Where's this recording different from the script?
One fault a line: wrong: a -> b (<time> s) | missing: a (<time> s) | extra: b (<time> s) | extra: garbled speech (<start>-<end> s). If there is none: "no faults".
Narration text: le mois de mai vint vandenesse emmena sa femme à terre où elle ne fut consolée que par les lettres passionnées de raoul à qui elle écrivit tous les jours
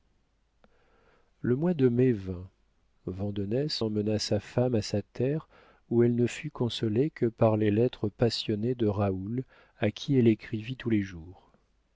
extra: sa (4.8 s)